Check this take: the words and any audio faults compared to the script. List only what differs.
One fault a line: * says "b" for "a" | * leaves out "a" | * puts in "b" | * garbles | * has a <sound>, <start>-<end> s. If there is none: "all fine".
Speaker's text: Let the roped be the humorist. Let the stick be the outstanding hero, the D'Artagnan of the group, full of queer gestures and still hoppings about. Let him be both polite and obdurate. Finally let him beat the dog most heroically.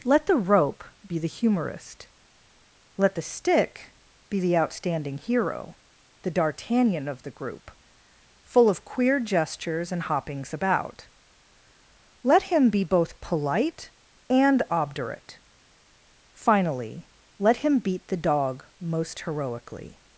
* says "rope" for "roped"
* leaves out "still"